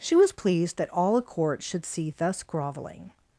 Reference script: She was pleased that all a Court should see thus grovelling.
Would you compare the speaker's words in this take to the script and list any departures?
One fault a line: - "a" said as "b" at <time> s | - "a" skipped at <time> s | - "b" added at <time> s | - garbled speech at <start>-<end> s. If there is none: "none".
none